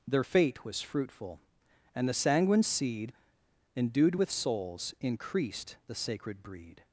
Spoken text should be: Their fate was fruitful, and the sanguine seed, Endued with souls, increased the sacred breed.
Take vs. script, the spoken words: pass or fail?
pass